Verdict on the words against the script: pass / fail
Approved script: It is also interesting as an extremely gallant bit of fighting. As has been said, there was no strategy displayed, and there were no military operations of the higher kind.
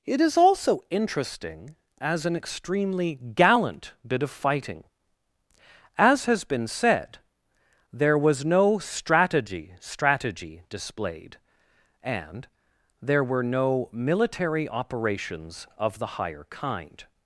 fail